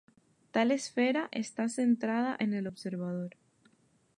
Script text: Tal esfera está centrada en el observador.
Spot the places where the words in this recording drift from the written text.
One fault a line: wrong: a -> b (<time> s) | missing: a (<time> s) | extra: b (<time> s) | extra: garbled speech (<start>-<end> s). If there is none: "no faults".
no faults